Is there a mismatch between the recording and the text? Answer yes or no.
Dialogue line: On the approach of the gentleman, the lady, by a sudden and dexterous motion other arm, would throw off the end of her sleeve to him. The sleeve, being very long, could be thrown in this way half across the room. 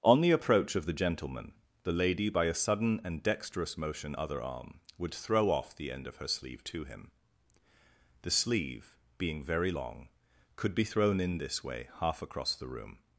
no